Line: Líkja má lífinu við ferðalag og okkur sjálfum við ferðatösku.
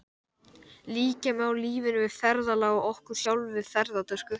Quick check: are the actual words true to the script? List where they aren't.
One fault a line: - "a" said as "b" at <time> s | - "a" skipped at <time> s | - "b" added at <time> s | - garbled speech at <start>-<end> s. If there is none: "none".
none